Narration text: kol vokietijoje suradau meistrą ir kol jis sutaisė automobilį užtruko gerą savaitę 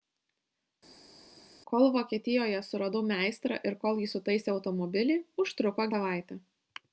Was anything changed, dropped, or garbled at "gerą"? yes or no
yes